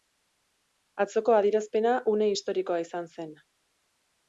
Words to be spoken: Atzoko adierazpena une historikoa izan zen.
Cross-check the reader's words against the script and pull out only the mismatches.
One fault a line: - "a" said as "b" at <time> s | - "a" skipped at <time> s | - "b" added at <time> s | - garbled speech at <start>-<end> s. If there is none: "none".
none